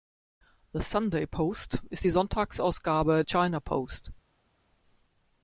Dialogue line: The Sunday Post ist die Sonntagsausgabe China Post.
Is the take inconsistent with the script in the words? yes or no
no